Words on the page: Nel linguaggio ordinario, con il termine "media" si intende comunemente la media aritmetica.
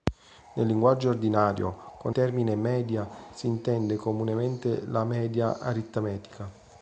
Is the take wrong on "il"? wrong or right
wrong